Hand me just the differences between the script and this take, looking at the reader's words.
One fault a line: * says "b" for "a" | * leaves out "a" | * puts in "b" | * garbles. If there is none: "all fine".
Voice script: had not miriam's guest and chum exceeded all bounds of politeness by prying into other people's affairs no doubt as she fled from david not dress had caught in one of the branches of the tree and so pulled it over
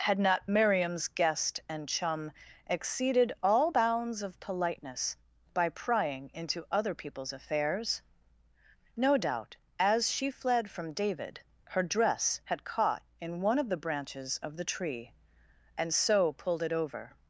* says "her" for "not"